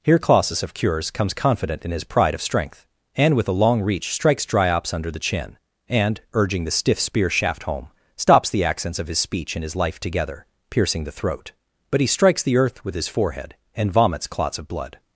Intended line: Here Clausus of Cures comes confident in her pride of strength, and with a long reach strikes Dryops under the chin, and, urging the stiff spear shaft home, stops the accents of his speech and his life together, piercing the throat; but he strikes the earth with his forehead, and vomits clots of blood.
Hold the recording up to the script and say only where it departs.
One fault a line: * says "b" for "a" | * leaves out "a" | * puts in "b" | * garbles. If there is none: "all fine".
* says "his" for "her"